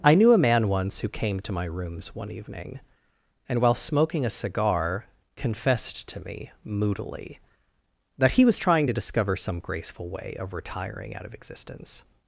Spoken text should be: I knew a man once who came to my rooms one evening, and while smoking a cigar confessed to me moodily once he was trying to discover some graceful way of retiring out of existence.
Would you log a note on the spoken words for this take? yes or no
yes